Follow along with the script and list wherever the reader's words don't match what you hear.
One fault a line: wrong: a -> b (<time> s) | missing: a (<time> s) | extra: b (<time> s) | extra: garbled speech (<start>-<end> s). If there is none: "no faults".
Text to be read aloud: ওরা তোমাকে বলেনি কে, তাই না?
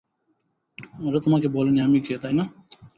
extra: আমি (1.8 s)